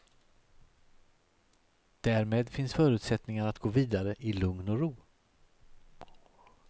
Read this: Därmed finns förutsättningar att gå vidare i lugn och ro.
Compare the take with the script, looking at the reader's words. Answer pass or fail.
pass